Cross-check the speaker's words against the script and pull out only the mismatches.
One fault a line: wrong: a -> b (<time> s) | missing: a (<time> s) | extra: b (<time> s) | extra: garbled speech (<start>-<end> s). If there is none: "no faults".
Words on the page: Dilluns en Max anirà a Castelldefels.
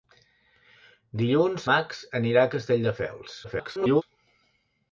missing: en (1.7 s)
extra: garbled speech (3.4-4.0 s)